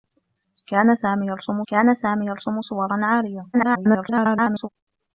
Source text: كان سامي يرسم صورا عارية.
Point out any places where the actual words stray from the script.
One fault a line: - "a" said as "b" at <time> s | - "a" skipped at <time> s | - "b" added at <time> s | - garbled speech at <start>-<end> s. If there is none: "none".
- "كان سامي يرسم" added at 1.7 s
- garbled speech at 3.5-4.7 s